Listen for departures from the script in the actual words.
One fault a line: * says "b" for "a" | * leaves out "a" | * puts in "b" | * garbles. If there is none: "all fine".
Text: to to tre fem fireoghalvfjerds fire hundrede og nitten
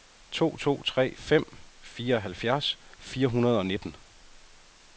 all fine